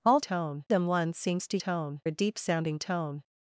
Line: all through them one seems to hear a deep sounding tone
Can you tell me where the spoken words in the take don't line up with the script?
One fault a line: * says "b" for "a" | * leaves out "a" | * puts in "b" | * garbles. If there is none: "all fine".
* says "tone" for "through"
* says "tone" for "hear"